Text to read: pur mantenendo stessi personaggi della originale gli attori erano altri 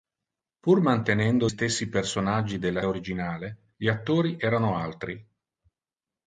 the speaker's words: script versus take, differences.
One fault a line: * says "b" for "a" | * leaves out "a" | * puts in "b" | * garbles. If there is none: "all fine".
all fine